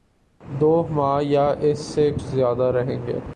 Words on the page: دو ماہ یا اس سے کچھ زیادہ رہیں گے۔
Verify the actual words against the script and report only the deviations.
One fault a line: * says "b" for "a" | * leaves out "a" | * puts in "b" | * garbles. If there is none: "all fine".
* leaves out "کچھ"